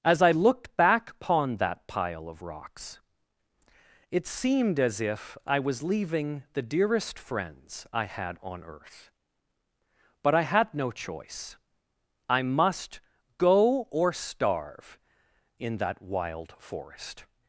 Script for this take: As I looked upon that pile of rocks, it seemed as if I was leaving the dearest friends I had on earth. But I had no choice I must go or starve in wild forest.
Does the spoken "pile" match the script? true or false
true